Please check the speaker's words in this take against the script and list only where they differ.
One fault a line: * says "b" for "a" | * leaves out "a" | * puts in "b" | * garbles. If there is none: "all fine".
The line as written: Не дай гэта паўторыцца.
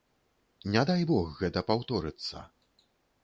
* puts in "бог"